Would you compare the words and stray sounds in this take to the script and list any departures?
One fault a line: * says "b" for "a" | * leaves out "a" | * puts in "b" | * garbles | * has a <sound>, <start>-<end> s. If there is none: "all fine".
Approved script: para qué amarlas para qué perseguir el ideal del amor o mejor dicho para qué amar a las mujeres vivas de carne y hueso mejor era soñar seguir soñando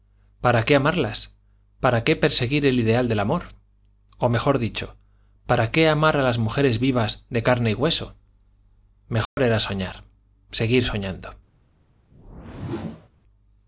* has a dropout, 9.3-9.4 s
* has a whoosh, 12.1-13.1 s